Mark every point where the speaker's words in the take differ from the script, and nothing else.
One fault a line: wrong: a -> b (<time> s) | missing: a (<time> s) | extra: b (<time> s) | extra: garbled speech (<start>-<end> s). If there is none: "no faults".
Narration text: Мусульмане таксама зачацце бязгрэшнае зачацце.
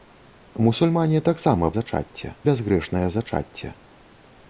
no faults